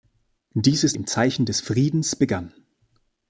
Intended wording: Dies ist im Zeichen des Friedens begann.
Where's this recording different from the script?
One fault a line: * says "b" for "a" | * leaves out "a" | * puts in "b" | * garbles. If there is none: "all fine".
all fine